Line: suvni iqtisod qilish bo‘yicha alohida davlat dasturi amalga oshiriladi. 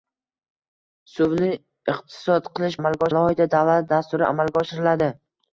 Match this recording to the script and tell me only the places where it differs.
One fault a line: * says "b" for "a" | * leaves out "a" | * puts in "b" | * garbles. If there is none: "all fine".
* says "amalga" for "bo‘yicha"